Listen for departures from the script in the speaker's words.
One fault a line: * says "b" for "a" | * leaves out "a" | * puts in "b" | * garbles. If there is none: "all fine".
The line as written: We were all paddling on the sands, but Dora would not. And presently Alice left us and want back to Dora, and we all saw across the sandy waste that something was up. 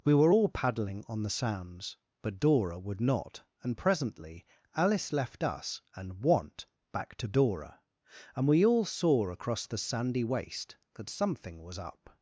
all fine